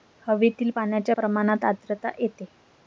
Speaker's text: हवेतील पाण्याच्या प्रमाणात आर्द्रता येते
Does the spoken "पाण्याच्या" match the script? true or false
true